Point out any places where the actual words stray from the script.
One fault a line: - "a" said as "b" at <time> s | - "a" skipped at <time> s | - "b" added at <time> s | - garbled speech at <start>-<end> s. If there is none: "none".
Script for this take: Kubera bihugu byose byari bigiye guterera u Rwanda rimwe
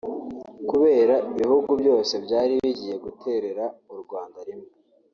none